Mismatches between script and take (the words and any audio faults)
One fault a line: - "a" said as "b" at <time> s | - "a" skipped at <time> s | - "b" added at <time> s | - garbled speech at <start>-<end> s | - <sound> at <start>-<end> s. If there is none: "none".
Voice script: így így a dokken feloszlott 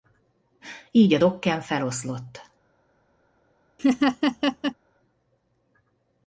- "így" skipped at 1.1 s
- laugh at 3.8-4.8 s